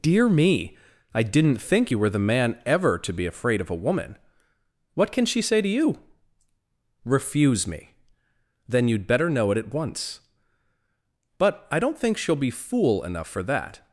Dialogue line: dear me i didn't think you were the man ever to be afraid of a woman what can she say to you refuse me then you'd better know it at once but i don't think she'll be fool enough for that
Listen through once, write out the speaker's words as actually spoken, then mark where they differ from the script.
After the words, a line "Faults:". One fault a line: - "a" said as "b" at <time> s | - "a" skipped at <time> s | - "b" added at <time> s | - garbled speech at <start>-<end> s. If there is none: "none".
dear me i didn't think you were the man ever to be afraid of a woman what can she say to you refuse me then you'd better know it at once but i don't think she'll be fool enough for that
Faults:
none